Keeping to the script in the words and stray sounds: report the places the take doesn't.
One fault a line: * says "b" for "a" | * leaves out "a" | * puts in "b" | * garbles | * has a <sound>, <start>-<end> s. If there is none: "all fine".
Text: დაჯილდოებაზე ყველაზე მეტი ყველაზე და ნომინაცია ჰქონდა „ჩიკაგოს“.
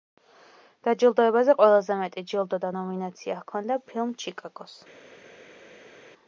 * says "ჯილდო" for "ყველაზე"
* puts in "ფილმ"